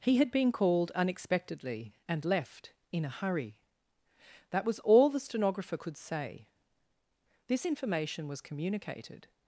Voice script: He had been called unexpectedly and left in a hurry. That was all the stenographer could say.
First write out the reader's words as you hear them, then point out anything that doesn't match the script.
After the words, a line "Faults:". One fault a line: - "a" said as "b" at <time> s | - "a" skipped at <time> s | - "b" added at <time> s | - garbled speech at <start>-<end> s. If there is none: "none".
He had been called unexpectedly and left in a hurry. That was all the stenographer could say. This information was communicated
Faults:
- "This information was communicated" added at 7.5 s